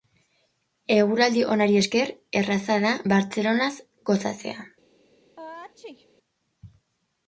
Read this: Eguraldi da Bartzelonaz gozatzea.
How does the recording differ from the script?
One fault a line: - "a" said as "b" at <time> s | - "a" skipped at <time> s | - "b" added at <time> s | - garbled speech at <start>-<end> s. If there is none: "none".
- "onari esker erraza" added at 1.6 s